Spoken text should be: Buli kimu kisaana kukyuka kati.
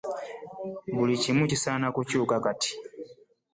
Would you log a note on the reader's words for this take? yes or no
no